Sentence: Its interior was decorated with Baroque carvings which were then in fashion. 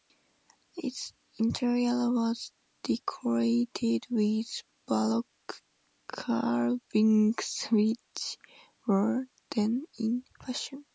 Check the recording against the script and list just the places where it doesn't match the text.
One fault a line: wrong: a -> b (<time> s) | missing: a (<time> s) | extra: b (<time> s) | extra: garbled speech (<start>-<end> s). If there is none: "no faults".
no faults